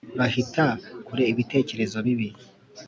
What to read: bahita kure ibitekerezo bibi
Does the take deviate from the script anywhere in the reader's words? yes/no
no